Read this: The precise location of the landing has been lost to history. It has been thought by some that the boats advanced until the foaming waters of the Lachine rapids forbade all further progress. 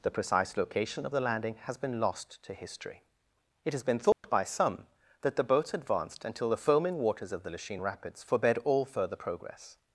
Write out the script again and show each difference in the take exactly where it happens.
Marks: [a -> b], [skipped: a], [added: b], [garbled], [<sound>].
The precise location of the landing has been lost to history. It has been thought [dropout] by some that the boats advanced until the foaming waters of the Lachine rapids forbade all further progress.